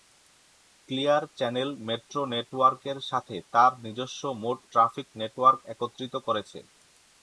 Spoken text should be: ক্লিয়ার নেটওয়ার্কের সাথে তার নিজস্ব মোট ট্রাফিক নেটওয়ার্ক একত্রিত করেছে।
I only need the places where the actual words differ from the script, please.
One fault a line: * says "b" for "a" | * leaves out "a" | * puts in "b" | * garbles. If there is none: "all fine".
* puts in "চ্যানেল মেট্রো"